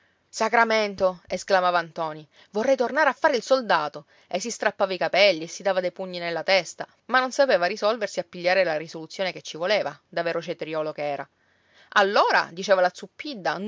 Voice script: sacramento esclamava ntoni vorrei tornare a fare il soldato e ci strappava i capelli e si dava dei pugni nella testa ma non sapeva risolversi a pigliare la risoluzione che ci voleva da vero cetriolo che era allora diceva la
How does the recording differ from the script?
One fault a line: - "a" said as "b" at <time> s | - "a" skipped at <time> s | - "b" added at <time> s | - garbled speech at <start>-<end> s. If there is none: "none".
- "ci" said as "si" at 4.4 s